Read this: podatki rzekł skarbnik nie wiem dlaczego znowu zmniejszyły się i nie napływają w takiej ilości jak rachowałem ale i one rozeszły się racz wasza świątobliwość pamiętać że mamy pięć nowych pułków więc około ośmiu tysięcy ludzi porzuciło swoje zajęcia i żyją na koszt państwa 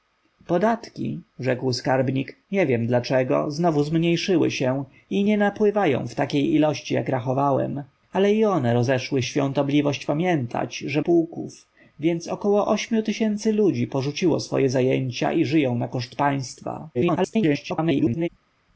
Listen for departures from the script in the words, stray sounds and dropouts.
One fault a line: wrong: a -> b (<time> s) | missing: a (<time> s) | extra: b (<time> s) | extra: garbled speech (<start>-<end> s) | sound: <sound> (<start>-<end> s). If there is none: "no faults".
missing: się racz wasza (9.2 s)
missing: mamy pięć nowych (11.0 s)
extra: garbled speech (16.9-18.3 s)